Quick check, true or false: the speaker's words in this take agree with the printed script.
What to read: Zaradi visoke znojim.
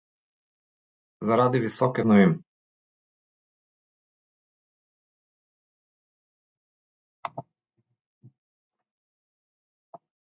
true